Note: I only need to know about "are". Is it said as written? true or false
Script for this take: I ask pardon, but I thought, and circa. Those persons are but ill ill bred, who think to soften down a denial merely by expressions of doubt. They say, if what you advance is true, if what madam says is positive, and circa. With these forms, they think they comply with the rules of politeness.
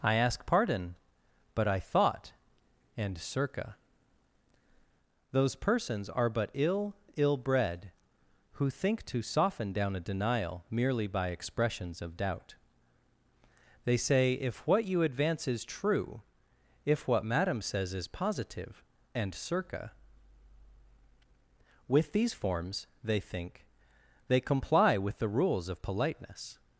true